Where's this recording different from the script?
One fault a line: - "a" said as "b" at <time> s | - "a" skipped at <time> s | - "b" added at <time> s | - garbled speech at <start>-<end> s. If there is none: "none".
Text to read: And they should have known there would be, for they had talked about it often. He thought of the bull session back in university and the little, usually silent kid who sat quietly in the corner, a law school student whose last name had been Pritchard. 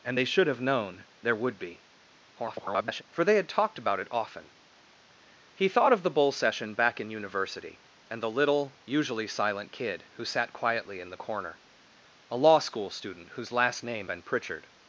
- garbled speech at 2.4-3.0 s
- "had" skipped at 14.1 s